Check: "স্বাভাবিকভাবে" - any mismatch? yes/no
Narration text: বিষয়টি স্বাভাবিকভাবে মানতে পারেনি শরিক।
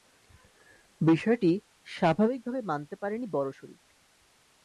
no